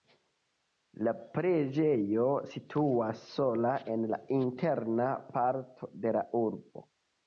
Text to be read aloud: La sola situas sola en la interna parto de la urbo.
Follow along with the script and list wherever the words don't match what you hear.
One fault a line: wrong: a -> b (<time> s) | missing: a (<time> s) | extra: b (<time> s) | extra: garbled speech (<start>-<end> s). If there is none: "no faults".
wrong: sola -> preĝejo (1.4 s)